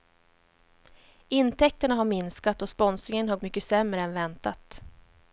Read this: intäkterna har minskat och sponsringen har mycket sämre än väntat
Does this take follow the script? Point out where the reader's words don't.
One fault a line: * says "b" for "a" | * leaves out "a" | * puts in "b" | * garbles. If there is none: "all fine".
all fine